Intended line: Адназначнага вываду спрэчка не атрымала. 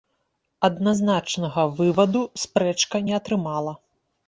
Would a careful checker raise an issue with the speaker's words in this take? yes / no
no